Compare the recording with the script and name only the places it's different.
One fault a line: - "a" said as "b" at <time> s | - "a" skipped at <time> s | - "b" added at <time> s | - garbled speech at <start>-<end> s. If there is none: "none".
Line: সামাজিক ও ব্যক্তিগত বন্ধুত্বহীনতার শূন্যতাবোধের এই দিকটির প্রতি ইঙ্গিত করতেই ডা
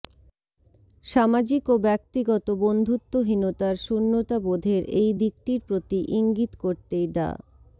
none